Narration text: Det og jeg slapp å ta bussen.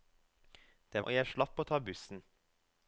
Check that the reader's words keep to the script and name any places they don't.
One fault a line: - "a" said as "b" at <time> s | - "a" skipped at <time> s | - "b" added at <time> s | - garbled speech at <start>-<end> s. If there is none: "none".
none